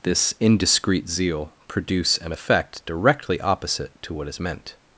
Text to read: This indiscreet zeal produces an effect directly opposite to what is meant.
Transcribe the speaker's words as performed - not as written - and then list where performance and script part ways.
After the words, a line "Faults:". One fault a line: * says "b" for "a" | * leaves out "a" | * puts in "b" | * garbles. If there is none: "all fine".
This indiscreet zeal produce an effect directly opposite to what is meant.
Faults:
* says "produce" for "produces"